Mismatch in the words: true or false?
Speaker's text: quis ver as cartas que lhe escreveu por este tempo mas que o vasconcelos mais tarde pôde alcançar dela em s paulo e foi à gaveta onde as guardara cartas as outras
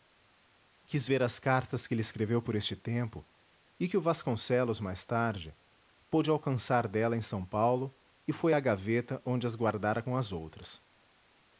true